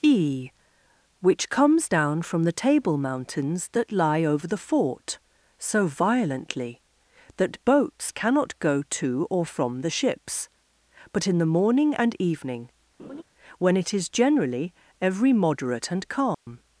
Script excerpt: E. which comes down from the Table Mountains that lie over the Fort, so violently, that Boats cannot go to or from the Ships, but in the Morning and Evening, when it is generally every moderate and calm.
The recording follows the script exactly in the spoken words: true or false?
true